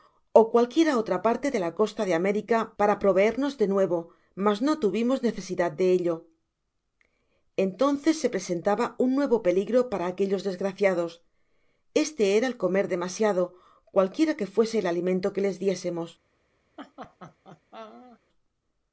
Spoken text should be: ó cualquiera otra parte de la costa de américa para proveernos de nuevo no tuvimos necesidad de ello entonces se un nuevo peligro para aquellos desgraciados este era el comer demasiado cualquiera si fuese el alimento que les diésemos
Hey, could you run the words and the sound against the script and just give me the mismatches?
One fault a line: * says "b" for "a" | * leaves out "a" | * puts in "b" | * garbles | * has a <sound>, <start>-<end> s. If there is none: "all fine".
* puts in "mas"
* puts in "presentaba"
* says "que" for "si"
* has a laugh, 16.8-18.2 s